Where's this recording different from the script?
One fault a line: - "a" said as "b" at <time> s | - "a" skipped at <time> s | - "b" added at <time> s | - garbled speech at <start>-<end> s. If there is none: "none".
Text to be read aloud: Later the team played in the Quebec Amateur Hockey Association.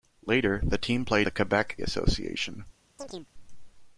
- "in" skipped at 1.3 s
- "Amateur Hockey" skipped at 1.8 s